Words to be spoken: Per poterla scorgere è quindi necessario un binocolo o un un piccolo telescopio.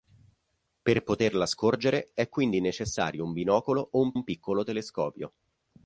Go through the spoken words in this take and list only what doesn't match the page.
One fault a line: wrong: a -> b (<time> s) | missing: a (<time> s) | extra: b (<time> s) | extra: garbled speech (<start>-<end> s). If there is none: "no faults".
no faults